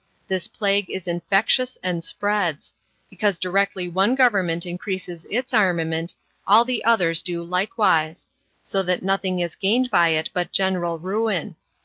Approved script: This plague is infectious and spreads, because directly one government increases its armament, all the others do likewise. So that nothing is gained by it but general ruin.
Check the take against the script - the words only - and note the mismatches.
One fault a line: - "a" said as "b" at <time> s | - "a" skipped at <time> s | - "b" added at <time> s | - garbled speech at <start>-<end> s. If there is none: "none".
none